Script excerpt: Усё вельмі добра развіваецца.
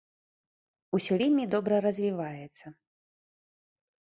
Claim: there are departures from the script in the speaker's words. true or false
false